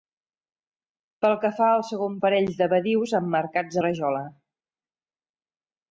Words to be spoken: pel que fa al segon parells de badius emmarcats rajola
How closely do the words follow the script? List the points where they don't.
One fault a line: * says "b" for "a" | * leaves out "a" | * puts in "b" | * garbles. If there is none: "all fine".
all fine